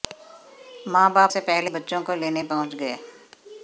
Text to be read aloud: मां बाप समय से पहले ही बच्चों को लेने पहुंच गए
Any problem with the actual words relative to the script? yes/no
yes